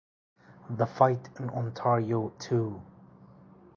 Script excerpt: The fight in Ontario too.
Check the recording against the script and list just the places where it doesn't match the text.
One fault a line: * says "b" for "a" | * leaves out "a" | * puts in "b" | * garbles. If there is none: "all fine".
all fine